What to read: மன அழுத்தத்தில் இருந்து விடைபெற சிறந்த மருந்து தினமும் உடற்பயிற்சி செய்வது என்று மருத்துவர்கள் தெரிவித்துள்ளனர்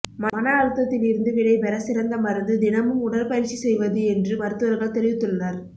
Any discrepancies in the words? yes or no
no